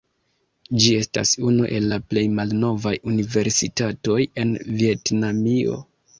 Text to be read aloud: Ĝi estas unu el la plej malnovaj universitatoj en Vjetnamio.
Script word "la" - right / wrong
right